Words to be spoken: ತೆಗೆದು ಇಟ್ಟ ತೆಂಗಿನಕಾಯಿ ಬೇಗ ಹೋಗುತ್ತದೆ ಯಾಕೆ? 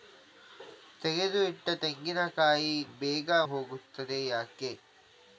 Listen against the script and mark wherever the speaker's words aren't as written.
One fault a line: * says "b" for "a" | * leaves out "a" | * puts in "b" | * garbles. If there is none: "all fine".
all fine